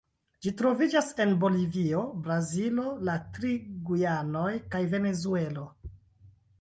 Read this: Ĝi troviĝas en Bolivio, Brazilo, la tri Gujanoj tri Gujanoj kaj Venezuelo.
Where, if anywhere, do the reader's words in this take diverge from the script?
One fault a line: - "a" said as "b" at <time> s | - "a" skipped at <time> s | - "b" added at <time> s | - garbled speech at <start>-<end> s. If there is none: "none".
- "tri Gujanoj" skipped at 4.5 s